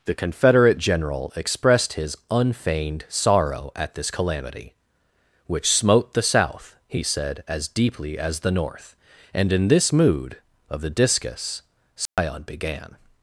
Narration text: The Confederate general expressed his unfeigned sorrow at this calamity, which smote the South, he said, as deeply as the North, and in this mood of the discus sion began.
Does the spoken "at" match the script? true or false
true